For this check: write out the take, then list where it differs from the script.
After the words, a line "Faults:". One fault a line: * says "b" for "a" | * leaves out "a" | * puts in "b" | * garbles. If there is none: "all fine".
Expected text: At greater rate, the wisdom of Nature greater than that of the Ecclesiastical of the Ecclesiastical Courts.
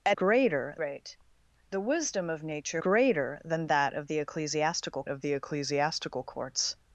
At greater rate, the wisdom of Nature greater than that of the Ecclesiastical of the Ecclesiastical Courts.
Faults:
all fine